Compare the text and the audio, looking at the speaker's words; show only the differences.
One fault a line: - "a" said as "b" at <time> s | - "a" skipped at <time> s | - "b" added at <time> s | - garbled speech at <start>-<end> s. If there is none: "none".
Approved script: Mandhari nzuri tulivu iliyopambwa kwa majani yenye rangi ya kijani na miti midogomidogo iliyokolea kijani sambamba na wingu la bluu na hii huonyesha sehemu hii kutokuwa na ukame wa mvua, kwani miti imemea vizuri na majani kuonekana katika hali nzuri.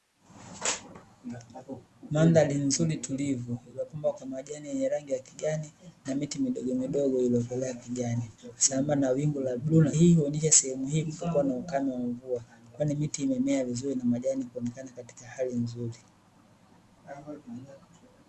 none